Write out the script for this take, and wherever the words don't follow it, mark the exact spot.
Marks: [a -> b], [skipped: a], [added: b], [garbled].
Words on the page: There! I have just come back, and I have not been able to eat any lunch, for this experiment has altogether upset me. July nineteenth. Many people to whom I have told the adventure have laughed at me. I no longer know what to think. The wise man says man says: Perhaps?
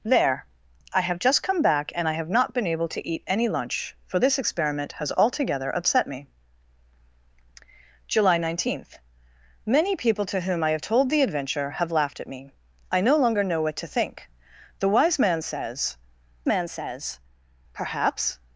There! I have just come back, and I have not been able to eat any lunch, for this experiment has altogether upset me. July nineteenth. Many people to whom I have told the adventure have laughed at me. I no longer know what to think. The wise man says man says: Perhaps?